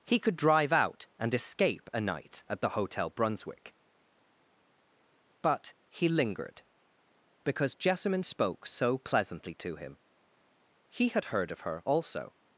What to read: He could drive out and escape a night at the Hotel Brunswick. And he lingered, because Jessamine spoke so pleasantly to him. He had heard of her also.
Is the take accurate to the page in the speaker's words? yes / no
no